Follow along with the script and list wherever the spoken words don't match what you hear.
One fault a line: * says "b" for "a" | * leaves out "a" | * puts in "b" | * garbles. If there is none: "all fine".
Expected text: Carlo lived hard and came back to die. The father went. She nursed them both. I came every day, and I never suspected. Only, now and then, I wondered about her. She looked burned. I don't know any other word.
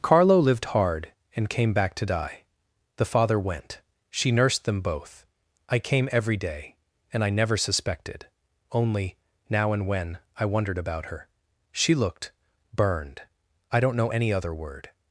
* says "when" for "then"